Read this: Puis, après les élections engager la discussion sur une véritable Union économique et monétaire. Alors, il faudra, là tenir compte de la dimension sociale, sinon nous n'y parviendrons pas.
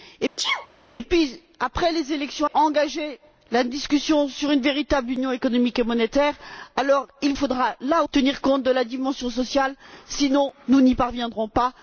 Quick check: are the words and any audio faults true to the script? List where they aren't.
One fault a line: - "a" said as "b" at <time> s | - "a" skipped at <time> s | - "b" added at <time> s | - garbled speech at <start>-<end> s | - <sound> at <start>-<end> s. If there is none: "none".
- sneeze at 0.4-0.7 s